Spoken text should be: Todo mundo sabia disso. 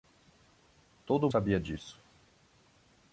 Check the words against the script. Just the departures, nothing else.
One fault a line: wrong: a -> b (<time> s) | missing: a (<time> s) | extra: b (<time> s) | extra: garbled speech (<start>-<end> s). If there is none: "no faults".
missing: mundo (1.3 s)